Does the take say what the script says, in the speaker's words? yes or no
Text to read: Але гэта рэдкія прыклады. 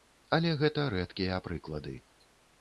yes